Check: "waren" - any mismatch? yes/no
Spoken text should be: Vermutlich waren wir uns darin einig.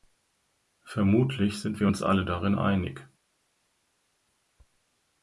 yes